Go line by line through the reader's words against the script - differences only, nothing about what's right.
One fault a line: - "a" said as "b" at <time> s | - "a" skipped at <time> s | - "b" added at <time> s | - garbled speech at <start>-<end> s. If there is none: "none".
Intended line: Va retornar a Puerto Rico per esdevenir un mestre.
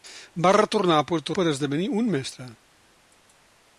- "Rico" skipped at 1.4 s